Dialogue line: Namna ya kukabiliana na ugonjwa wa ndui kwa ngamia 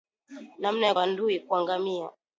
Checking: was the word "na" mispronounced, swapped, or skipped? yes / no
yes